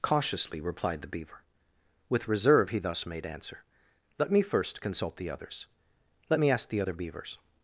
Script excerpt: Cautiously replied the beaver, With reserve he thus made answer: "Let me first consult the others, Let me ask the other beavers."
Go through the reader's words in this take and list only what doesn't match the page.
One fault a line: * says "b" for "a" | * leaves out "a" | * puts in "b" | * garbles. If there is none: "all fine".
all fine